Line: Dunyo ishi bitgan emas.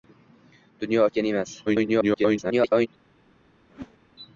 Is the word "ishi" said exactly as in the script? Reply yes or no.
no